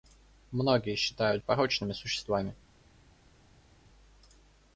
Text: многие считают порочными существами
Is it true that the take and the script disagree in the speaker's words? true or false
false